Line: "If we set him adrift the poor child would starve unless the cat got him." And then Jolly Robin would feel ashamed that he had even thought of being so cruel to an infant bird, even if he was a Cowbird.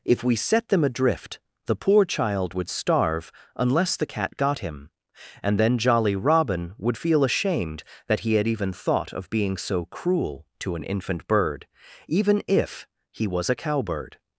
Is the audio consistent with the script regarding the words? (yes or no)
no